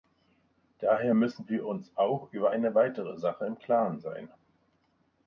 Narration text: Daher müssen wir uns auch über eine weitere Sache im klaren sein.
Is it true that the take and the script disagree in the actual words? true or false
false